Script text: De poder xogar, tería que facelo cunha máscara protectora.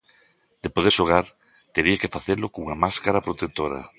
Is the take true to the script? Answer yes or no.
yes